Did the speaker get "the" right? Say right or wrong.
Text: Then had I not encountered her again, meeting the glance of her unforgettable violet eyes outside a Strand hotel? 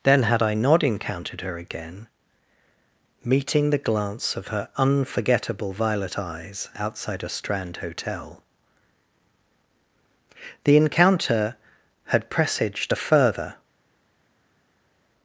right